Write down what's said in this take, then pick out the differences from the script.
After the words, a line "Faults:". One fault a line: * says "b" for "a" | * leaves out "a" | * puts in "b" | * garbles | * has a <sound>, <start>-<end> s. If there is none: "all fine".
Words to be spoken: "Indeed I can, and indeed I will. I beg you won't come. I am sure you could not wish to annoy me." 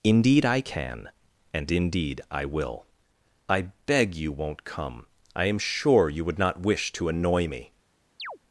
"Indeed I can, and indeed I will. I beg you won't come. I am sure you would not wish to annoy me."
Faults:
* says "would" for "could"
* has a chirp, 8.2-8.4 s